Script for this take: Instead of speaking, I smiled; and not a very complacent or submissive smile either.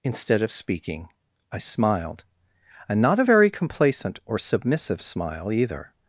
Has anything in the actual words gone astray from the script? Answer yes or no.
no